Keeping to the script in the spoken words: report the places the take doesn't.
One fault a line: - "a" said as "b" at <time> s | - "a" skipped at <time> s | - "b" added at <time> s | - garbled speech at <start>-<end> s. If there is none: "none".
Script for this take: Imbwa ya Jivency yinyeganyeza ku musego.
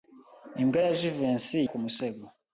- "yinyeganyeza" skipped at 1.6 s